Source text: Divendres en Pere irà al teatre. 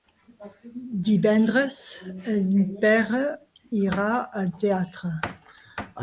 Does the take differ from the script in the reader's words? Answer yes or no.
no